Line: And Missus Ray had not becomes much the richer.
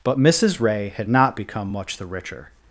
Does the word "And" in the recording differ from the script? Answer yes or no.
yes